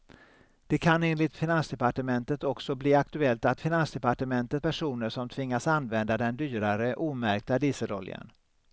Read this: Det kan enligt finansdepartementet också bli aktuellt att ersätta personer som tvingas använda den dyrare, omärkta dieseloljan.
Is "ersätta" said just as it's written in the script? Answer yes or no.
no